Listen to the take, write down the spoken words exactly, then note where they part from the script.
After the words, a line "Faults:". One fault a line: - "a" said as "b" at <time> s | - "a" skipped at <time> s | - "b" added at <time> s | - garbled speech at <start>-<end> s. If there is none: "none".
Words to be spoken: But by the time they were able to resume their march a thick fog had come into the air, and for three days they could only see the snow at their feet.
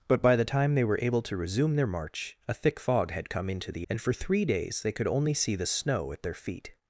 But by the time they were able to resume their march a thick fog had come into the and for three days they could only see the snow at their feet.
Faults:
- "air" skipped at 3.9 s